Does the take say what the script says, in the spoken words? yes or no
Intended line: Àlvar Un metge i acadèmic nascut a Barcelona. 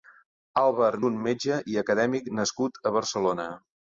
yes